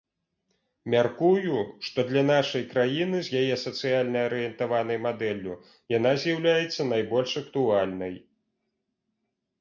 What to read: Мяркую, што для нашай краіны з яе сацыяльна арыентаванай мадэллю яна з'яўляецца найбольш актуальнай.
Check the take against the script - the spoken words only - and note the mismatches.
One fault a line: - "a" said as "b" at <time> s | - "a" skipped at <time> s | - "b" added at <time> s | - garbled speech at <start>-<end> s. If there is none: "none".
none